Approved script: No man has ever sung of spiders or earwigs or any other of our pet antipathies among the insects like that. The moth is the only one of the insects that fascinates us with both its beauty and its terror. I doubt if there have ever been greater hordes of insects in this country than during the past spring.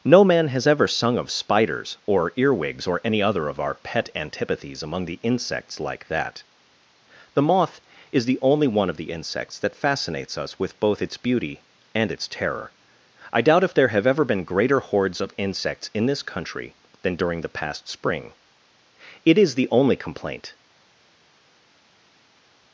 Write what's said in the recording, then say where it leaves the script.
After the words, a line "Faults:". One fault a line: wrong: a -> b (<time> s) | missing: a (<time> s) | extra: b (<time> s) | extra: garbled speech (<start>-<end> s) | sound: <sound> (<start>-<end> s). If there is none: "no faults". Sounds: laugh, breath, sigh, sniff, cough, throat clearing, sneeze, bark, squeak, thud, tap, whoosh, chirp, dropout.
No man has ever sung of spiders or earwigs or any other of our pet antipathies among the insects like that. The moth is the only one of the insects that fascinates us with both its beauty and its terror. I doubt if there have ever been greater hordes of insects in this country than during the past spring. It is the only complaint
Faults:
extra: It is the only complaint (19.3 s)